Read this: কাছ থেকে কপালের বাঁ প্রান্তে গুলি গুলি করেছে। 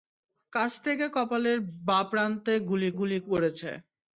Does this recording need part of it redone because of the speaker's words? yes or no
no